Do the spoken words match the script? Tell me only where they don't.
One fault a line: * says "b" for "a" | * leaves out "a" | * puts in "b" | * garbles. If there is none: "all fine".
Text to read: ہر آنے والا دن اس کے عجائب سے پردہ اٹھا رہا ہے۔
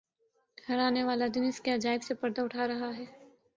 all fine